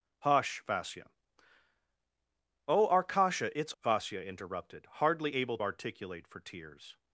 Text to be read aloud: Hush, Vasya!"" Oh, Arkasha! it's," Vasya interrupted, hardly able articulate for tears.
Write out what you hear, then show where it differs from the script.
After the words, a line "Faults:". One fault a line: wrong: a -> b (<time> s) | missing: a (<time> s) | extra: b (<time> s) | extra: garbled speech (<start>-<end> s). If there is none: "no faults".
Hush, Vasya!"" Oh, Arkasha! it's," Vasya interrupted, hardly able articulate for tears.
Faults:
no faults